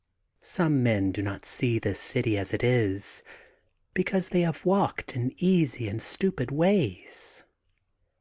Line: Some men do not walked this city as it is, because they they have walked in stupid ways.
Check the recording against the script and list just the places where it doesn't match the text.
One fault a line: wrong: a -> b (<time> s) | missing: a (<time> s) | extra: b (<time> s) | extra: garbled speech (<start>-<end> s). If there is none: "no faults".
wrong: walked -> see (1.4 s)
missing: they (4.4 s)
extra: easy and (5.4 s)